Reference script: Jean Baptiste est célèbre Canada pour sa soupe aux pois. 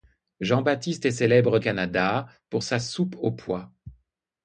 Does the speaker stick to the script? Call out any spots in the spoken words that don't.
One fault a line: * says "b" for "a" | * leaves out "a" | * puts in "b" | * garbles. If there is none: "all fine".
all fine